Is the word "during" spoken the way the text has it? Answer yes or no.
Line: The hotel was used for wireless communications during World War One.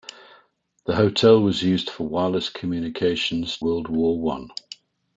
no